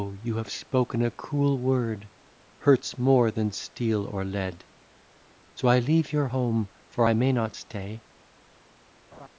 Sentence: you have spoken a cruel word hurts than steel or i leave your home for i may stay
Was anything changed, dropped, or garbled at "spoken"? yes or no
no